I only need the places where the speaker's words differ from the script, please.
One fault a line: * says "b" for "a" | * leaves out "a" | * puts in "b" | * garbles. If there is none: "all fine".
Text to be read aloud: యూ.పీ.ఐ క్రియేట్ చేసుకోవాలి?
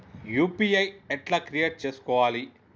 * puts in "ఎట్లా"